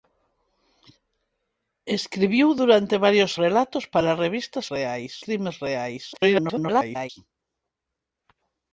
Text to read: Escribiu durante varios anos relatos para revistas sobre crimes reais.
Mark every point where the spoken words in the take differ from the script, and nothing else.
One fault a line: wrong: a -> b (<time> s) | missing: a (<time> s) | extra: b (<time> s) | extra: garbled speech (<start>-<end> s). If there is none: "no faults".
missing: anos (3.3 s)
wrong: sobre -> reais (4.7 s)
extra: garbled speech (6.1-7.1 s)